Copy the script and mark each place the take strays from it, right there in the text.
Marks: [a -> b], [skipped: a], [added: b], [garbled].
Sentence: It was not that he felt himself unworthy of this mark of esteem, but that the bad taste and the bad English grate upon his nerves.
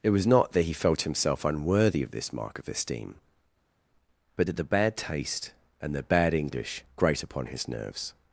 It was not that he felt himself unworthy of this mark of esteem, but that the bad taste and the bad English grate upon his nerves.